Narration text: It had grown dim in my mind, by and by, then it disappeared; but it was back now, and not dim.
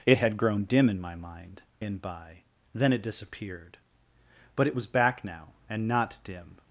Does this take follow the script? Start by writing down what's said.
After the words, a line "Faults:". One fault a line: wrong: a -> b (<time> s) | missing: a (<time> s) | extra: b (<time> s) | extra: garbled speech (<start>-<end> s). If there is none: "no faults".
It had grown dim in my mind, and by, then it disappeared; but it was back now, and not dim.
Faults:
missing: by (1.6 s)